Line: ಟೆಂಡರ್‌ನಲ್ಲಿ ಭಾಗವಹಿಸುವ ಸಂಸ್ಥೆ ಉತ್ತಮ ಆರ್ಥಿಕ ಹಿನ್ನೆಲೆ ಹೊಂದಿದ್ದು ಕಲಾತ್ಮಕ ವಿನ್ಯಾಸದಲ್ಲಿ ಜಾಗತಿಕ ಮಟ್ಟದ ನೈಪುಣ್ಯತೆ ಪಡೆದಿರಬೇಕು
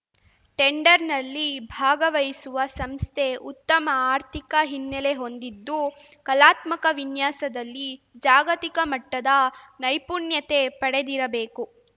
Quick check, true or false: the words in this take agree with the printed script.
true